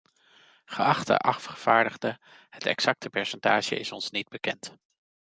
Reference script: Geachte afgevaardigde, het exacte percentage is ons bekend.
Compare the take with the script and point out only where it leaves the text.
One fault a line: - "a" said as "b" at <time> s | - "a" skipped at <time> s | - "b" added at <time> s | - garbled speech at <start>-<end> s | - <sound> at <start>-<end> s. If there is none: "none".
- "niet" added at 4.1 s